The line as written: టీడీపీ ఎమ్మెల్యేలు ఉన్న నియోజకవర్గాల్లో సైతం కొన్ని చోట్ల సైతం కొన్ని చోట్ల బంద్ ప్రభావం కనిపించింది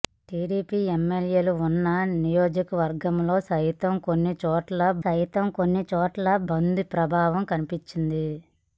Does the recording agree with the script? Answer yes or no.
yes